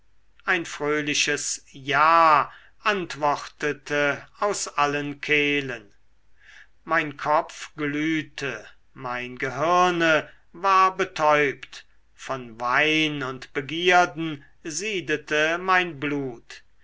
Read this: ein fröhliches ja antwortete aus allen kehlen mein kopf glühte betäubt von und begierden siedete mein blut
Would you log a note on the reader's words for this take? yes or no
yes